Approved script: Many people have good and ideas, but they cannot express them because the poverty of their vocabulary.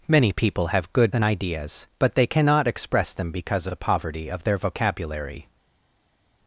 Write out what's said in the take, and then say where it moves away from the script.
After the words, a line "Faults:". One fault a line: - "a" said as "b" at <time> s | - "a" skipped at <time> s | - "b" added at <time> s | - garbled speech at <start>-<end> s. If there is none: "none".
Many people have good and ideas, but they cannot express them because the poverty of their vocabulary.
Faults:
none